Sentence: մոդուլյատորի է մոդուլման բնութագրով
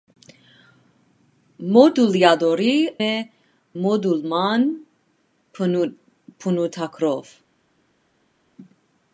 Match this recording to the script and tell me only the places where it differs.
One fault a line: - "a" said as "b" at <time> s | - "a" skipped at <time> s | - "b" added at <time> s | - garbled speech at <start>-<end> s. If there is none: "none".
none